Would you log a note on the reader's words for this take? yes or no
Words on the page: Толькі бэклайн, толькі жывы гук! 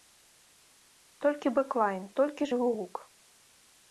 no